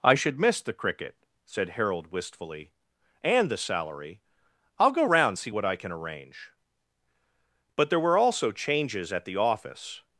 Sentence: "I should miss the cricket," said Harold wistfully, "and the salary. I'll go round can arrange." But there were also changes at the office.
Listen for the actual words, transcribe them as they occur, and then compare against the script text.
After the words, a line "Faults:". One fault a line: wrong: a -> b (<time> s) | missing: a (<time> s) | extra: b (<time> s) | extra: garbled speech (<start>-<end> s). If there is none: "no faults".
"I should miss the cricket," said Harold wistfully, "and the salary. I'll go round see what I can arrange." But there were also changes at the office.
Faults:
extra: see what I (5.4 s)